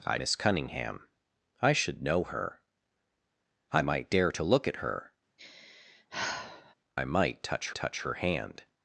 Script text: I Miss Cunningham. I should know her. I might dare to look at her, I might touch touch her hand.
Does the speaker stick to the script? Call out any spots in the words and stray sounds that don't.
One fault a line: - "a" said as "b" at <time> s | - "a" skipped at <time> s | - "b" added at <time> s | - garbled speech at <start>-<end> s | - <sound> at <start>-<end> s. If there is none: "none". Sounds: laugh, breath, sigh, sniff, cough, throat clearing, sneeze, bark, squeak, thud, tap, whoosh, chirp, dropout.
- sigh at 5.4-6.7 s